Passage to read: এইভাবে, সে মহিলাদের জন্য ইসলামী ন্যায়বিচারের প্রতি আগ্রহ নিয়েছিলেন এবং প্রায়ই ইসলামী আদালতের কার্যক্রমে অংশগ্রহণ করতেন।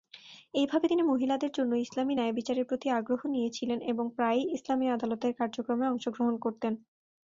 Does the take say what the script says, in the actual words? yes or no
no